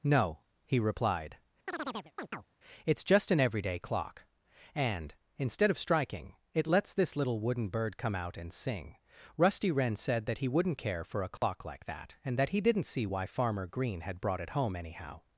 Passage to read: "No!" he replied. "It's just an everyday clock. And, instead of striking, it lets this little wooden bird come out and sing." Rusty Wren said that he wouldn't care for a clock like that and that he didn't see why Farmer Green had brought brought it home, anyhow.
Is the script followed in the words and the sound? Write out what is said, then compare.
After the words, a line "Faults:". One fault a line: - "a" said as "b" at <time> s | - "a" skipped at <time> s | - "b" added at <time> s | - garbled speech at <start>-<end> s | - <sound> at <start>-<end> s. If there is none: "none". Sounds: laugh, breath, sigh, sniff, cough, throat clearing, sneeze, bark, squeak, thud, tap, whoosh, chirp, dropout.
"No!" he replied. "It's just an everyday clock. And, instead of striking, it lets this little wooden bird come out and sing." Rusty Wren said that he wouldn't care for a clock like that and that he didn't see why Farmer Green had brought it home, anyhow.
Faults:
- chirp at 1.7-2.5 s
- dropout at 11.4-11.4 s
- "brought" skipped at 14.4 s